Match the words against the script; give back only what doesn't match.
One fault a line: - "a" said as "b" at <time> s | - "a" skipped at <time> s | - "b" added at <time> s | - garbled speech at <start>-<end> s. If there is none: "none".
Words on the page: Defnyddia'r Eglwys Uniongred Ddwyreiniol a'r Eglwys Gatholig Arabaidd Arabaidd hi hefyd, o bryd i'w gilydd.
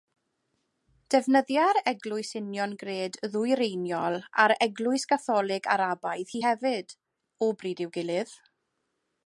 - "Arabaidd" skipped at 6.3 s